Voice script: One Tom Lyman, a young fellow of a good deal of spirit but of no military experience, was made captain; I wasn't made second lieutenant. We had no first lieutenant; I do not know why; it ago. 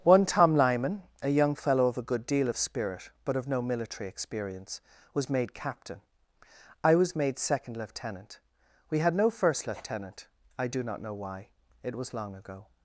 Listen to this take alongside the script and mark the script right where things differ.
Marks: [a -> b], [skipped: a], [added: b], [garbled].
One Tom Lyman, a young fellow of a good deal of spirit but of no military experience, was made captain; I [wasn't -> was] made second lieutenant. We had no first lieutenant; I do not know why; it [added: was long] ago.